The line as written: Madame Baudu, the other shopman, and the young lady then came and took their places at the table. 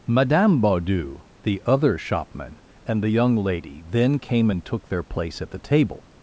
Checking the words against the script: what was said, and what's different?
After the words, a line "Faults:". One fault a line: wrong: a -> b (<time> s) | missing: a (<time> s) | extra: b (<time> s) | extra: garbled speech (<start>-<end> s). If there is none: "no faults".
Madame Baudu, the other shopman, and the young lady then came and took their place at the table.
Faults:
wrong: places -> place (5.0 s)